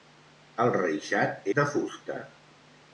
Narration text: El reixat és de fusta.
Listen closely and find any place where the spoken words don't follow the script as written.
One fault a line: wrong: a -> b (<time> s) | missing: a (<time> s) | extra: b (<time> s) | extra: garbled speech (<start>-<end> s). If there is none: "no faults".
missing: és (1.4 s)